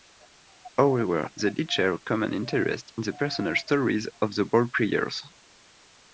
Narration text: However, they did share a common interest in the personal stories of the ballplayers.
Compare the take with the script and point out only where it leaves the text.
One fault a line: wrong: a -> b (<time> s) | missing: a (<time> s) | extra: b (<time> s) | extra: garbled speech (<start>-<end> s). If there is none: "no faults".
no faults